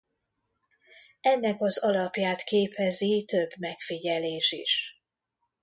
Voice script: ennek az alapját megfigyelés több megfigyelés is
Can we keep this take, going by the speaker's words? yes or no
no